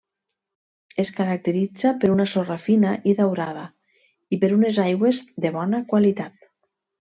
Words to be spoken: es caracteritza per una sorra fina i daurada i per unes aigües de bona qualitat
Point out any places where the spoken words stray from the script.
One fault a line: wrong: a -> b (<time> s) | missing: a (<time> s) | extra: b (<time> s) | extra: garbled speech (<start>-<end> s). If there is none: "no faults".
no faults